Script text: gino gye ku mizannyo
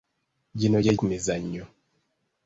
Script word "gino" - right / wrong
right